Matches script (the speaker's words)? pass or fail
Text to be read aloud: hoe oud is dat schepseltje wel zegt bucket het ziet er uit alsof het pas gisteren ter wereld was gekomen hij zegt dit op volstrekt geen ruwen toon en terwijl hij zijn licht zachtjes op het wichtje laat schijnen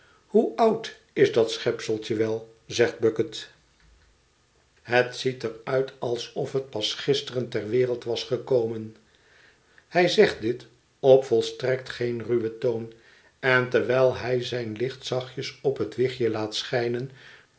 pass